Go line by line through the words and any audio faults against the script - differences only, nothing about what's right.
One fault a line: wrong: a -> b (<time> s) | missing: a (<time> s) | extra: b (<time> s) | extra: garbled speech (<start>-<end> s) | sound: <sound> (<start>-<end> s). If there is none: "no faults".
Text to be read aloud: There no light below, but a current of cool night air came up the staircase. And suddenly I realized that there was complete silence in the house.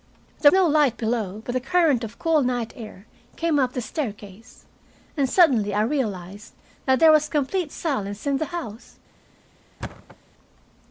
sound: thud (9.8-10.2 s)